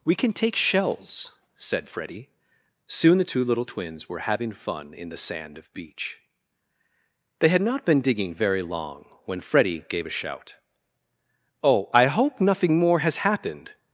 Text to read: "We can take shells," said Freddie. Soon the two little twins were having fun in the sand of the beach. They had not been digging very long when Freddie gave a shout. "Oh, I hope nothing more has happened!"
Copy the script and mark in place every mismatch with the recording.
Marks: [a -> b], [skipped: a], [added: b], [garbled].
"We can take shells," said Freddie. Soon the two little twins were having fun in the sand of [skipped: the] beach. They had not been digging very long when Freddie gave a shout. "Oh, I hope nothing more has happened!"